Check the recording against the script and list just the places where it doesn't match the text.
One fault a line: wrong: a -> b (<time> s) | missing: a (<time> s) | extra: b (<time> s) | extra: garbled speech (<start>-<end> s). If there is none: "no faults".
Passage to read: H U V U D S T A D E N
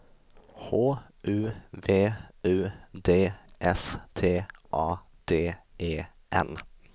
no faults